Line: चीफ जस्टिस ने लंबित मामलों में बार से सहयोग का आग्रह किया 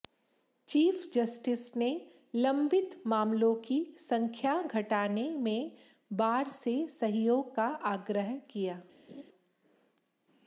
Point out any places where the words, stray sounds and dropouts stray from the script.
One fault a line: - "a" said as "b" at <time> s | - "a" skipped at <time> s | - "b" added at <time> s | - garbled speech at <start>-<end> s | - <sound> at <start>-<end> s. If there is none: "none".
- "की संख्या घटाने" added at 3.6 s
- laugh at 9.1-9.2 s